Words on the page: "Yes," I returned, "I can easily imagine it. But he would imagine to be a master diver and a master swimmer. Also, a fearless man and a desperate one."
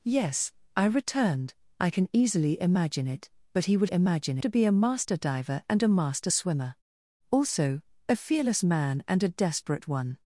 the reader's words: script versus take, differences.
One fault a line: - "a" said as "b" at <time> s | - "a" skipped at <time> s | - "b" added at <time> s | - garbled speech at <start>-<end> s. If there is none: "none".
none